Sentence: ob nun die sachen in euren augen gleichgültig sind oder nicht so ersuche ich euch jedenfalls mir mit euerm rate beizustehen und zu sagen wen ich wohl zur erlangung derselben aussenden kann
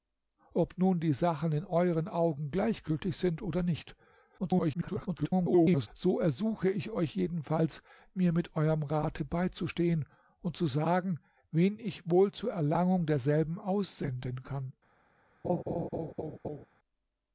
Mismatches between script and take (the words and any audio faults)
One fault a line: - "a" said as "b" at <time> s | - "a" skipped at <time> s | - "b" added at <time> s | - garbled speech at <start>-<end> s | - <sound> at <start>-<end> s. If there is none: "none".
- garbled speech at 4.4-5.9 s
- laugh at 15.4-16.7 s